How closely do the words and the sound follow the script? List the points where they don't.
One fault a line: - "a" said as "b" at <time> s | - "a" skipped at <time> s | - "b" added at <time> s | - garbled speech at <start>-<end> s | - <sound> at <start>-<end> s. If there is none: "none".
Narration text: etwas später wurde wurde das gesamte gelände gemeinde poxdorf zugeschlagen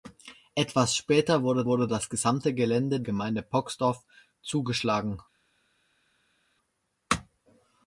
none